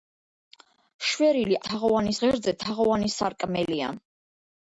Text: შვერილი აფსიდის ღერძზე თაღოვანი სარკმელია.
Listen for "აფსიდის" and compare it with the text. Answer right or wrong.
wrong